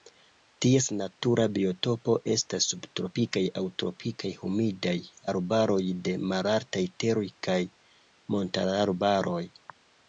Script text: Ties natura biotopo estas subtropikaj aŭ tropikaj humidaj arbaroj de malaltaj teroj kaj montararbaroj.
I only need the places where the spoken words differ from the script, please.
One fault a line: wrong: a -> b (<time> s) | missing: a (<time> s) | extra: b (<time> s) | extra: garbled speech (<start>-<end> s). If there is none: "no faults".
no faults